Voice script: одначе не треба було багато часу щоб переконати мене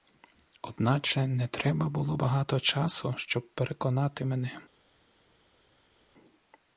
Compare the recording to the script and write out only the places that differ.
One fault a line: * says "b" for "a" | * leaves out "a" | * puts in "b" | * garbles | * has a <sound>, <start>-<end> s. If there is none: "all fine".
all fine